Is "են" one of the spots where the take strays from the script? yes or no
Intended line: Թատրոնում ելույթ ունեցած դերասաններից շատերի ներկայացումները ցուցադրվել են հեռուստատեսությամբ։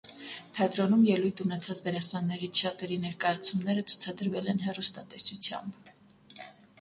no